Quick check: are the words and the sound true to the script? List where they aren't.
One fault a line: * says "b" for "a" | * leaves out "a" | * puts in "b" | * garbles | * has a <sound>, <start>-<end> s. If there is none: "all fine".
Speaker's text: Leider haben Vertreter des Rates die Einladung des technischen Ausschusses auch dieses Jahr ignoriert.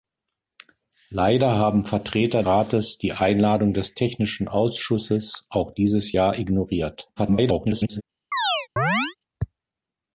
* leaves out "des"
* garbles
* has a chirp, 8.3-9.2 s